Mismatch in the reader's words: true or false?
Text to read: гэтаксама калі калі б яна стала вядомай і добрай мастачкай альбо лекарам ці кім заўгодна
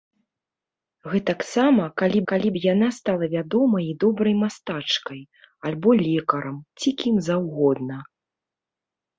false